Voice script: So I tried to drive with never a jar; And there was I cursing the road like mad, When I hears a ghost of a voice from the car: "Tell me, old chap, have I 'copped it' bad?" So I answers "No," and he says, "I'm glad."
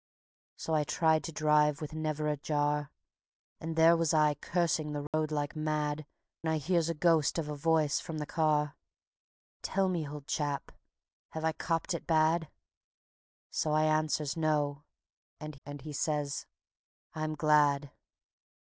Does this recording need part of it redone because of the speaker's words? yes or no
yes